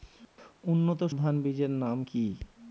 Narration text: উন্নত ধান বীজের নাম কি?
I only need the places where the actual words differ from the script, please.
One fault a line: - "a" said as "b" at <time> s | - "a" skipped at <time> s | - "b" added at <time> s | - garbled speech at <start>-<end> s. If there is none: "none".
none